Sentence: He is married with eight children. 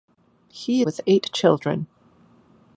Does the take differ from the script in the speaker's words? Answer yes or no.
yes